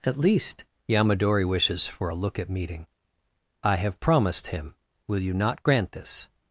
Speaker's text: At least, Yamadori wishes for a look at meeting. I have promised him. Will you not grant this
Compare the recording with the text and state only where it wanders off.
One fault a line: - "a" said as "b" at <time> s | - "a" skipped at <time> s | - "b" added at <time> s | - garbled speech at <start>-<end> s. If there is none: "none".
none